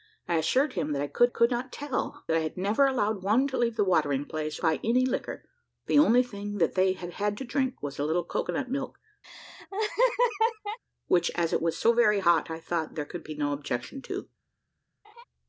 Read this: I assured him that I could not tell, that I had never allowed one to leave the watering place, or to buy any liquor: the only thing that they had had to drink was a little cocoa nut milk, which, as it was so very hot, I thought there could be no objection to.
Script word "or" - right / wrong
wrong